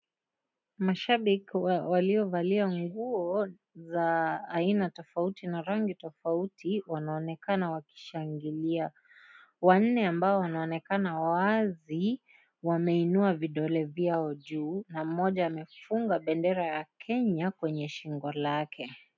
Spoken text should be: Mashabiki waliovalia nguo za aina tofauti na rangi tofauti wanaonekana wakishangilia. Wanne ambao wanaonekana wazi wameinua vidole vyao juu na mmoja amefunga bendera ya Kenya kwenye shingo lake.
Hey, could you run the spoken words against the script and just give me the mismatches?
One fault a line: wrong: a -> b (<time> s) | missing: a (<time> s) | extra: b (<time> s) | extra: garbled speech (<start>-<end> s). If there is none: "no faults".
no faults